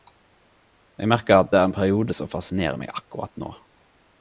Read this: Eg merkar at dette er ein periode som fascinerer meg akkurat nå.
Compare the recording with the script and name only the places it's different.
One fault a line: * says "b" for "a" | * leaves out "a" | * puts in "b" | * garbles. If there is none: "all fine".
* leaves out "dette"